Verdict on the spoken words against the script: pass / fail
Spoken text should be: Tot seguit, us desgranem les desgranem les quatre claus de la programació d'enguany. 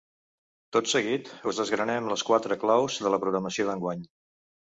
fail